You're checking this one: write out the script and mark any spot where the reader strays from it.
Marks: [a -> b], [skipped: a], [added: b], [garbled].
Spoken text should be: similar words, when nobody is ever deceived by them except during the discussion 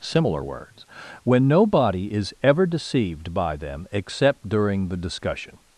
similar words, when nobody is ever deceived by them except during the discussion